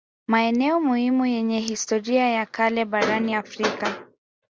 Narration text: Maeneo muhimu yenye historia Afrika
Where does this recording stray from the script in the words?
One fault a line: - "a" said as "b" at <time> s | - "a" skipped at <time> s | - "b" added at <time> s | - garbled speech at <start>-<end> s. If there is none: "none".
- "ya kale barani" added at 2.3 s